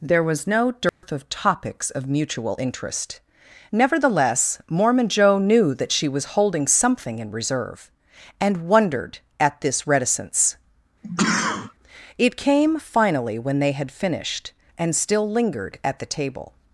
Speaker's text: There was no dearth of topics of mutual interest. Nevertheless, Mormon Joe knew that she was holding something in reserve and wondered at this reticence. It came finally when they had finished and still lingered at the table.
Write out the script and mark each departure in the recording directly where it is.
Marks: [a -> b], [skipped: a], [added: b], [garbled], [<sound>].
There was no dearth [dropout] of topics of mutual interest. Nevertheless, Mormon Joe knew that she was holding something in reserve and wondered at this reticence. [sneeze] It came finally when they had finished and still lingered at the table.